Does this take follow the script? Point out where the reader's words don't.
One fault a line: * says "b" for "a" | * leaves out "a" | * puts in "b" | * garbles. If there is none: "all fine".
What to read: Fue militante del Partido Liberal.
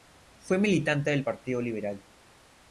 all fine